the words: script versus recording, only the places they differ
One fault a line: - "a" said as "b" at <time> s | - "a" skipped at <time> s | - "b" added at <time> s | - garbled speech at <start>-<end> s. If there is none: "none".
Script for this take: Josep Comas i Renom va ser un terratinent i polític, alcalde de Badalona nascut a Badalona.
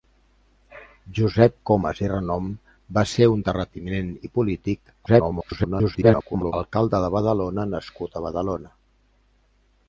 - garbled speech at 5.1-6.5 s